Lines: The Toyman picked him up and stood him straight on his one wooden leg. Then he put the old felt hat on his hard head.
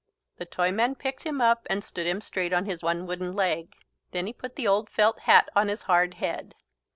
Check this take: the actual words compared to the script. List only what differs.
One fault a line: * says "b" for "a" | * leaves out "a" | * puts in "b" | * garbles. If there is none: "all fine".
all fine